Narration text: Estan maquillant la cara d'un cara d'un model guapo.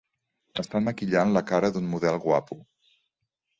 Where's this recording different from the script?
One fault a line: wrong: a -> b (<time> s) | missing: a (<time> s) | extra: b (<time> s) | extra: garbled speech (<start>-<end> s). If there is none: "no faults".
missing: cara d'un (1.9 s)